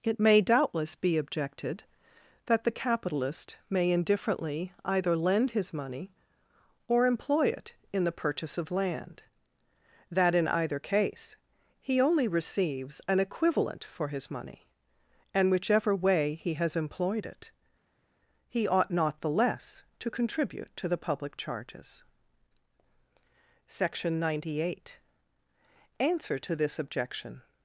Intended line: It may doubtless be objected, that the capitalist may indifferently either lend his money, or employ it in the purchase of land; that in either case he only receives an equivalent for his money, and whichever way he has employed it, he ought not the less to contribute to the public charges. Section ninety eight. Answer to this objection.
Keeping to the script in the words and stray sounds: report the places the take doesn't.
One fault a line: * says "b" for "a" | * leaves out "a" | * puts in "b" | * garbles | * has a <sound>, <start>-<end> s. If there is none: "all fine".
all fine